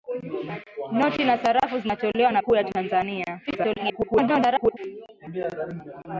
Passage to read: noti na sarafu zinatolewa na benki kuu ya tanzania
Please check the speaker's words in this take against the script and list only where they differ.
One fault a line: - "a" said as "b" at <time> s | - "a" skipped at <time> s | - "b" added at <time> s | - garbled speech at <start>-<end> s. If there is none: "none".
- "benki" skipped at 2.4 s
- garbled speech at 3.5-4.8 s